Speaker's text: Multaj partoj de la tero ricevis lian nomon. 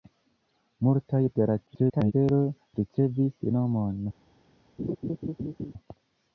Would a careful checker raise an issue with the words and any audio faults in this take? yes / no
yes